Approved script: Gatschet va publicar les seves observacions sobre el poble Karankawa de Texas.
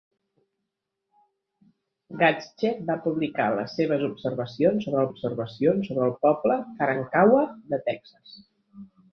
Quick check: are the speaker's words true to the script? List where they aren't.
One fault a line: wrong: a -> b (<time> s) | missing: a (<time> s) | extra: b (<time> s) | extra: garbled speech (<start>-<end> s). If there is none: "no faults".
extra: observacions sobre (5.1 s)